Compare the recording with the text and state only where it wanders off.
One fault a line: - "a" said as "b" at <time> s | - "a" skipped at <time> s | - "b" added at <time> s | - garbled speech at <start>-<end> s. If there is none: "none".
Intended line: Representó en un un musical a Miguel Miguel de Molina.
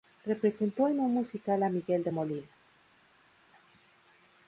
- "un" skipped at 1.1 s
- "Miguel" skipped at 2.0 s